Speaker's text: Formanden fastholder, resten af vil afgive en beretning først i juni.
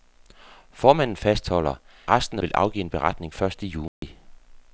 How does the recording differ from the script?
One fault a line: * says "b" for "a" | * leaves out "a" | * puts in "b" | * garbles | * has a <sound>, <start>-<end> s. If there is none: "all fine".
* has a dropout, 3.9-4.0 s